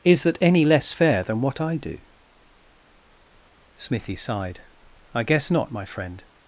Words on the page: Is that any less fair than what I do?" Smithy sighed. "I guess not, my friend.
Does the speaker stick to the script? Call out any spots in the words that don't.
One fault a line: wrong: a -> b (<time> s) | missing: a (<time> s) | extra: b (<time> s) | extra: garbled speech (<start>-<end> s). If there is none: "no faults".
no faults